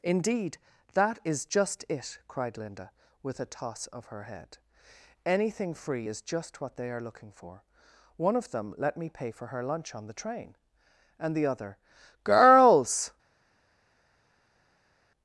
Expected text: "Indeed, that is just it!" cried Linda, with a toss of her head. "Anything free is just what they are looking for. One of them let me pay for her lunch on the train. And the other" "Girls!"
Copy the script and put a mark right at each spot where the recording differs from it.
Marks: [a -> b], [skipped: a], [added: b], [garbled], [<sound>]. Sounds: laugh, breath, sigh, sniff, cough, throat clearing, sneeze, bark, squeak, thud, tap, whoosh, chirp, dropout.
"Indeed, that is just it!" cried Linda, with a toss of her head. "Anything free is just what they are looking for. One of them let me pay for her lunch on the train. And the other" "Girls!"